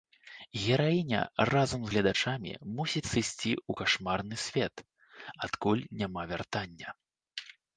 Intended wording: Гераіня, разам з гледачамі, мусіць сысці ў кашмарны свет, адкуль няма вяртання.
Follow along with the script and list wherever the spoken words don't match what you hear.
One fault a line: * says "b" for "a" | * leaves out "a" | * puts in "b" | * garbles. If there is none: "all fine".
all fine